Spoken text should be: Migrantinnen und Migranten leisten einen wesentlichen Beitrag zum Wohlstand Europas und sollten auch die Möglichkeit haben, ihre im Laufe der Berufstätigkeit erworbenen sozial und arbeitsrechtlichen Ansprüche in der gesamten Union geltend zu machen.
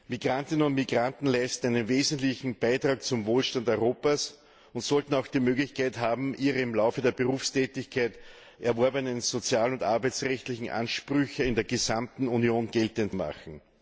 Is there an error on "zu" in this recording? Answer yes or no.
yes